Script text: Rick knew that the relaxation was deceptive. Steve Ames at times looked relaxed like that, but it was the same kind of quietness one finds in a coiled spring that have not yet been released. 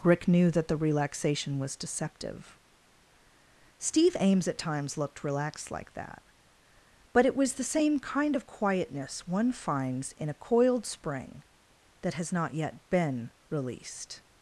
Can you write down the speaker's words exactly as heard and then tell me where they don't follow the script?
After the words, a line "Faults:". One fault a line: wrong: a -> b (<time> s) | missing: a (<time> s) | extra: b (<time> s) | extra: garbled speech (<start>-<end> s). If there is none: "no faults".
Rick knew that the relaxation was deceptive. Steve Ames at times looked relaxed like that, but it was the same kind of quietness one finds in a coiled spring that has not yet been released.
Faults:
wrong: have -> has (12.1 s)